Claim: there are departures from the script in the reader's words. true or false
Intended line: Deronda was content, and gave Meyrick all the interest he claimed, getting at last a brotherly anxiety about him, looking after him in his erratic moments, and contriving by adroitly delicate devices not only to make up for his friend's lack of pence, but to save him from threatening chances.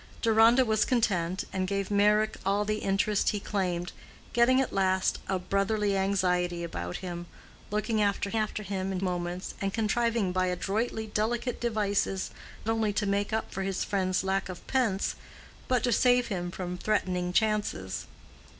true